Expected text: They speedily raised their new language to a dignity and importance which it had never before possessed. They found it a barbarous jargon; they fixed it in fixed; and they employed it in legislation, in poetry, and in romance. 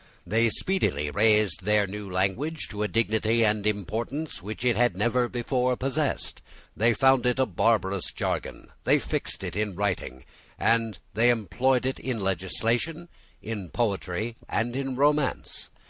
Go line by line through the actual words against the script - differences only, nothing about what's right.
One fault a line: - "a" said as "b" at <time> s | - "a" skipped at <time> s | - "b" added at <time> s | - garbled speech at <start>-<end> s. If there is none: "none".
- "fixed" said as "writing" at 9.7 s